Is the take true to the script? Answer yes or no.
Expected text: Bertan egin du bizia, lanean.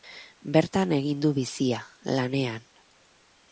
yes